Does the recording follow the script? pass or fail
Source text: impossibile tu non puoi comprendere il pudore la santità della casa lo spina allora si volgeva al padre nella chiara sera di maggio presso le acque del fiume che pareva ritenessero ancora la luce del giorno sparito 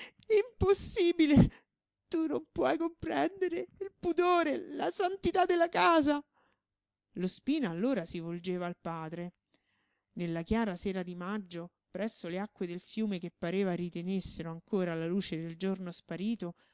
pass